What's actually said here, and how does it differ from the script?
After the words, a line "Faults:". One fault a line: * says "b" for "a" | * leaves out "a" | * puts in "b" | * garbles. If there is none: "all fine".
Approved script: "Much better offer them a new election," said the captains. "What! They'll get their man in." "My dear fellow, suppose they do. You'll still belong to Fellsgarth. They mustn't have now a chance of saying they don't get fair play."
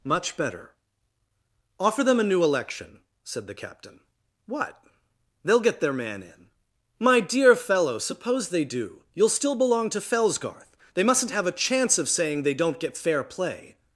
"Much better offer them a new election," said the captain. "What! They'll get their man in." "My dear fellow, suppose they do. You'll still belong to Fellsgarth. They mustn't have a chance of saying they don't get fair play."
Faults:
* says "captain" for "captains"
* leaves out "now"